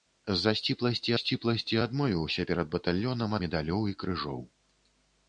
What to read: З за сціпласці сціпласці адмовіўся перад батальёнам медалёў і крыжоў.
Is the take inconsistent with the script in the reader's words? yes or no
no